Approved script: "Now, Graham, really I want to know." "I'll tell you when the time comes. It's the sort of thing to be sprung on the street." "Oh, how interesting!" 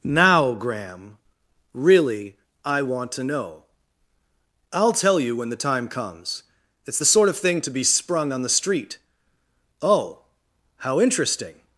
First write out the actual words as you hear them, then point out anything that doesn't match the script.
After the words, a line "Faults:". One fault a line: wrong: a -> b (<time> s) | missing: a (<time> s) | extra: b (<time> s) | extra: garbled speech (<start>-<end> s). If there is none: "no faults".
"Now, Graham, really I want to know." "I'll tell you when the time comes. It's the sort of thing to be sprung on the street." "Oh, how interesting!"
Faults:
no faults